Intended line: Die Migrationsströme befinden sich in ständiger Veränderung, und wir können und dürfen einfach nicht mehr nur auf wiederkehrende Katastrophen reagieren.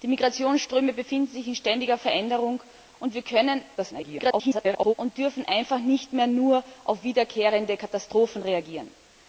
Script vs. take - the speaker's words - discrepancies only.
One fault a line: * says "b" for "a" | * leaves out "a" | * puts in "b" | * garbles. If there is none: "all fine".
* garbles